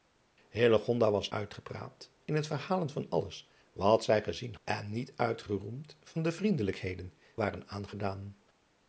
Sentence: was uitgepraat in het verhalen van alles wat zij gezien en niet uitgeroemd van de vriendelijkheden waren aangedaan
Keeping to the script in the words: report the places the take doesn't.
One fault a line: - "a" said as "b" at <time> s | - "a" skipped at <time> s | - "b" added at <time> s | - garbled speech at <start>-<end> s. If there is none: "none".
none